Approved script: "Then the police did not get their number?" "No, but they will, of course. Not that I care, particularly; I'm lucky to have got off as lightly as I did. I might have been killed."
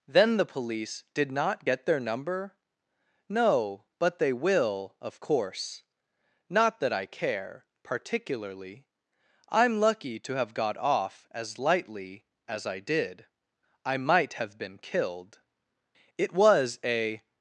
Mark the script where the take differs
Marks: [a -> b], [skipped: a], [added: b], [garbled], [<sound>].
"Then the police did not get their number?" "No, but they will, of course. Not that I care, particularly; I'm lucky to have got off as lightly as I did. I might have been killed." [added: It was a]